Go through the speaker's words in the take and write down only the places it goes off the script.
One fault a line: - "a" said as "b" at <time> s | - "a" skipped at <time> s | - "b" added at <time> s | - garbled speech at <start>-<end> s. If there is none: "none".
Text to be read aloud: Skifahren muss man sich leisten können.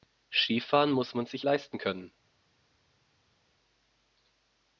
none